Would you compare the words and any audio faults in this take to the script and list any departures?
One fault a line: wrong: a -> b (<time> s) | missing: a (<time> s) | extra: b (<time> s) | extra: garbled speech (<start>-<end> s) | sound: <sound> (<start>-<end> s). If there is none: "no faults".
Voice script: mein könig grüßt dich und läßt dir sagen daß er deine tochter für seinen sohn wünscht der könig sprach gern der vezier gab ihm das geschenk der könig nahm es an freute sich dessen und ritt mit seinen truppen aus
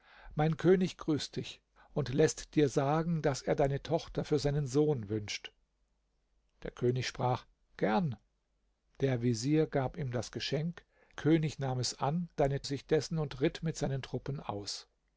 missing: der (10.8 s)
wrong: freute -> deine (12.4 s)